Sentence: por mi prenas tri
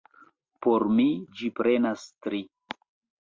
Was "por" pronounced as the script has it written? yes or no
yes